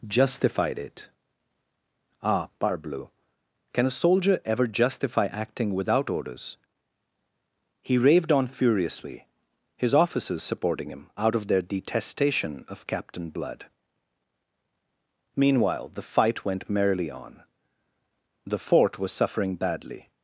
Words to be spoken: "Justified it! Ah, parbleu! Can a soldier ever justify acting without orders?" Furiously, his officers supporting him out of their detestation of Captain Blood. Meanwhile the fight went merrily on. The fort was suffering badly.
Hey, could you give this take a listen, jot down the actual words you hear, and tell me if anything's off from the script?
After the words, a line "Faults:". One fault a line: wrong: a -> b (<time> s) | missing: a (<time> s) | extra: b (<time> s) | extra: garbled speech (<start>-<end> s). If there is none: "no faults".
"Justified it! Ah, parbleu! Can a soldier ever justify acting without orders?" He raved on furiously, his officers supporting him out of their detestation of Captain Blood. Meanwhile the fight went merrily on. The fort was suffering badly.
Faults:
extra: He raved on (7.8 s)